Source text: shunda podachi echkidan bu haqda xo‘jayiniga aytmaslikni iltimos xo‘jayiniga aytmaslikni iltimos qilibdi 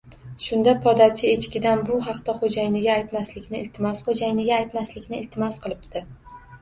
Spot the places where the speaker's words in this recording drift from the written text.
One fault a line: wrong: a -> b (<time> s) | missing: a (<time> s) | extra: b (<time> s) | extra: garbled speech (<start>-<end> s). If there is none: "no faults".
no faults